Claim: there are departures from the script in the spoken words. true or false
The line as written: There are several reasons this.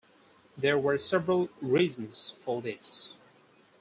true